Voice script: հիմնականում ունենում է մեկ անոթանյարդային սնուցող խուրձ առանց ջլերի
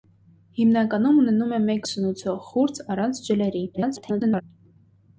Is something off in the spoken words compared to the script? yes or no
yes